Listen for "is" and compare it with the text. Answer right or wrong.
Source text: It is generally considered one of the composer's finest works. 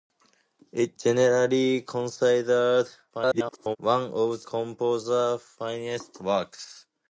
wrong